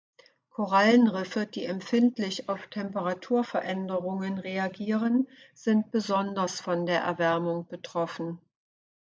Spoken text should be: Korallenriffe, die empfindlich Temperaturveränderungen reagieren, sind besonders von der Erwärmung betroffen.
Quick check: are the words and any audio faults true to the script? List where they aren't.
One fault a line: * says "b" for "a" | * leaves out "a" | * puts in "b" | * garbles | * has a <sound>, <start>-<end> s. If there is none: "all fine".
* puts in "auf"